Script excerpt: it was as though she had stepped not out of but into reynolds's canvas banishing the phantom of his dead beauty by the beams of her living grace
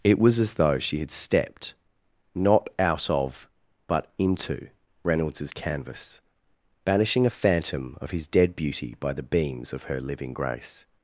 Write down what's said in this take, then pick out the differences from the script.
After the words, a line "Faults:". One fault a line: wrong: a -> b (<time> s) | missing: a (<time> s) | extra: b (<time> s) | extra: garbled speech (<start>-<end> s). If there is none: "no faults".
it was as though she had stepped not out of but into reynolds's canvas banishing a phantom of his dead beauty by the beams of her living grace
Faults:
wrong: the -> a (7.2 s)